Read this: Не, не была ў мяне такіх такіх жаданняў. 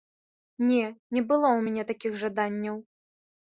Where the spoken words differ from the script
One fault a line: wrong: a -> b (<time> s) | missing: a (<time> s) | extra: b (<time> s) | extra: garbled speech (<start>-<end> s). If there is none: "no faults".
wrong: была -> было (1.3 s)
missing: такіх (2.2 s)